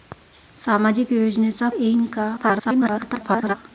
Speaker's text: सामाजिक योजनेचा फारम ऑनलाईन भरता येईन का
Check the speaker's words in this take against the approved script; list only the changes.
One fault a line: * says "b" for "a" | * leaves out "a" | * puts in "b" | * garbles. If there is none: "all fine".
* leaves out "फारम ऑनलाईन भरता"
* garbles